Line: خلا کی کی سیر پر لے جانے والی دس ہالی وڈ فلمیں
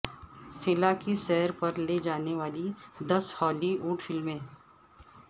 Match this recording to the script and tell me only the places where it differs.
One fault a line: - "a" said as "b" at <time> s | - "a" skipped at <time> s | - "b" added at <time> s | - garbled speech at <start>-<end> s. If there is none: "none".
- "کی" skipped at 1.1 s